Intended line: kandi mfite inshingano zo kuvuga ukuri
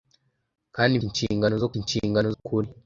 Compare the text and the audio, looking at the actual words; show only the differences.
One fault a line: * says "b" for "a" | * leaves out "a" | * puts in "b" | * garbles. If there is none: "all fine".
* leaves out "mfite"
* says "inshingano" for "kuvuga"